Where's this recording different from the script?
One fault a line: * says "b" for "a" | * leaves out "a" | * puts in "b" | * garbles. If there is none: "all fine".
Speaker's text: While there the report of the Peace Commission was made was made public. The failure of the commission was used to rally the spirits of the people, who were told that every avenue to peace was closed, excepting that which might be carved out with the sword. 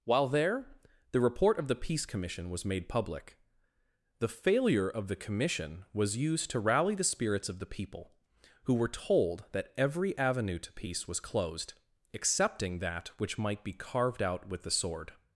* leaves out "was made"